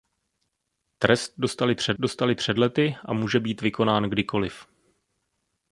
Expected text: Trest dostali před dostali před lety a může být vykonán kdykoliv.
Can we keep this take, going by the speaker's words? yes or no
yes